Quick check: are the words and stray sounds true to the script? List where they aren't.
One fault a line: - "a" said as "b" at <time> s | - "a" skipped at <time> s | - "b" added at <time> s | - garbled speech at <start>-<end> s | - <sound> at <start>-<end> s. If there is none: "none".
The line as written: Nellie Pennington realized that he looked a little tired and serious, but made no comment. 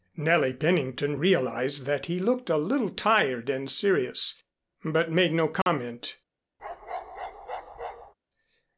- dropout at 5.6-5.7 s
- bark at 6.6-8.1 s